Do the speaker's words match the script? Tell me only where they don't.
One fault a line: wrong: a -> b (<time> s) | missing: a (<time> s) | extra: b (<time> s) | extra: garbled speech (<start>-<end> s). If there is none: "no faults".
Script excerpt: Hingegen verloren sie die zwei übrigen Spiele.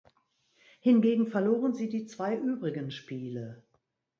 no faults